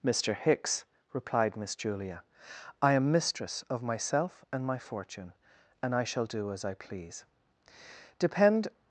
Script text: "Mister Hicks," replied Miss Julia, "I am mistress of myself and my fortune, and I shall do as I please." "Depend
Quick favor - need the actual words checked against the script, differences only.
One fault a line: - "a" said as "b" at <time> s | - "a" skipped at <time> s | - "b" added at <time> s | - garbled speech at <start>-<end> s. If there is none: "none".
none